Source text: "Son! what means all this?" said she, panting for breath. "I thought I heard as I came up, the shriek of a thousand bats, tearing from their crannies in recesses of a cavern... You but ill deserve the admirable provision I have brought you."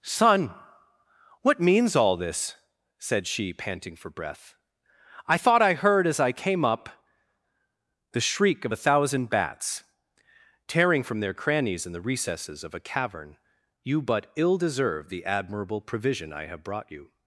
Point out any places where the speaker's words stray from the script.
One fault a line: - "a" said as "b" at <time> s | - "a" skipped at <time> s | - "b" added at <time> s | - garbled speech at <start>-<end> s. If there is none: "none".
- "the" added at 11.9 s